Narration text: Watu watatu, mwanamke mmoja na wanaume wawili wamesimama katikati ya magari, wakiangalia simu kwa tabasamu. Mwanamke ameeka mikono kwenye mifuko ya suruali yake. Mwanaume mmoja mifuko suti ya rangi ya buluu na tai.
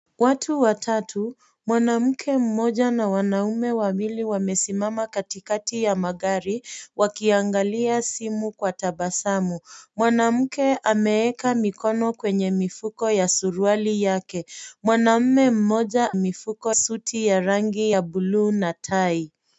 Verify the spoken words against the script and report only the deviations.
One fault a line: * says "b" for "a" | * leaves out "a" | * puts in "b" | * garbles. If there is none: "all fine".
all fine